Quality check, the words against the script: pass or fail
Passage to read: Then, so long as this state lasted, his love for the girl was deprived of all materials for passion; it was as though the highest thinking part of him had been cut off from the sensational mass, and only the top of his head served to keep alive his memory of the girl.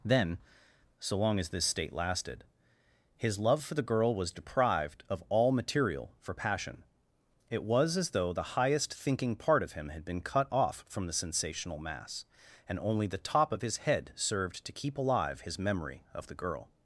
fail